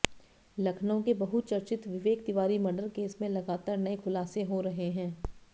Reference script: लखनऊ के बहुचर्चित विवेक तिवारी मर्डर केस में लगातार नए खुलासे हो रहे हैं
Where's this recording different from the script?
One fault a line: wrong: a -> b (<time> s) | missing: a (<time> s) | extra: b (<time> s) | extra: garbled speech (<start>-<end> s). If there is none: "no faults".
no faults